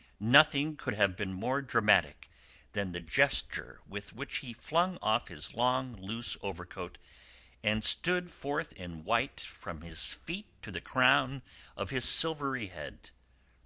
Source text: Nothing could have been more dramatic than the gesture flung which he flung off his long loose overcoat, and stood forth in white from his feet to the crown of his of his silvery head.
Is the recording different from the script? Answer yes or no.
yes